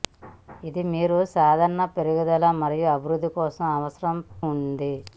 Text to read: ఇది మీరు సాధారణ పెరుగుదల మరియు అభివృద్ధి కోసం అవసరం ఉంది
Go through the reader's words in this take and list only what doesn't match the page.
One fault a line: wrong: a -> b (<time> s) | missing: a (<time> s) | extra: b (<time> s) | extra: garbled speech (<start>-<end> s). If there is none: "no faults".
no faults